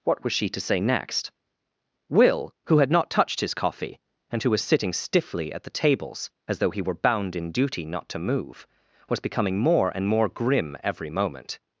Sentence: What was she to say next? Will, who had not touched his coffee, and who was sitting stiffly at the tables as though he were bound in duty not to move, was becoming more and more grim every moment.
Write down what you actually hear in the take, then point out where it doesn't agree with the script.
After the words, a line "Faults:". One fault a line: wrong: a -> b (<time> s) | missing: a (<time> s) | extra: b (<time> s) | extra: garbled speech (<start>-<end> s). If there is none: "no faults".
What was she to say next? Will, who had not touched his coffee, and who was sitting stiffly at the tables as though he were bound in duty not to move, was becoming more and more grim every moment.
Faults:
no faults